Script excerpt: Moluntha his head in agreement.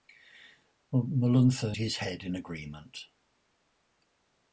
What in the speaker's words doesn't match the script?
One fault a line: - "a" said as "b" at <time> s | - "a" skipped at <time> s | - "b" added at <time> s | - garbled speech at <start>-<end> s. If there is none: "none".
none